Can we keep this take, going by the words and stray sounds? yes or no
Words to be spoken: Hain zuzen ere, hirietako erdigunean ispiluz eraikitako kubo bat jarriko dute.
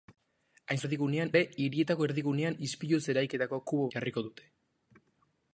no